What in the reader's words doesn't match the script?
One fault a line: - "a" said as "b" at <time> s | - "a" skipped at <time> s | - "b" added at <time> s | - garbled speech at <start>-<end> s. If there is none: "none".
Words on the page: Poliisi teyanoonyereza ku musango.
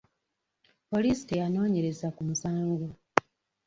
none